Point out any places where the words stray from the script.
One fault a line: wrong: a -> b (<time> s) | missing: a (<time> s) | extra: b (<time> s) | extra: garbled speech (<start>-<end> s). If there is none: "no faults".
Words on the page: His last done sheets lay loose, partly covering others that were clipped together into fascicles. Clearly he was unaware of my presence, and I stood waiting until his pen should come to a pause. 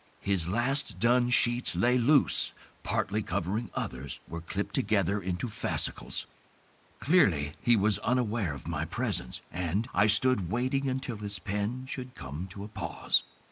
missing: that (4.2 s)